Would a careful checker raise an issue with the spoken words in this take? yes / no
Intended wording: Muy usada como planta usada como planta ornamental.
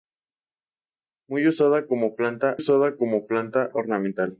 no